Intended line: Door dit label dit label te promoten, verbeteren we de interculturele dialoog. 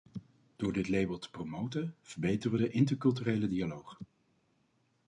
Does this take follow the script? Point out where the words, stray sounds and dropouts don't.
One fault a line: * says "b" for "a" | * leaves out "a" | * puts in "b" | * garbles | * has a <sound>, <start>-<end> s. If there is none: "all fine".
* leaves out "dit label"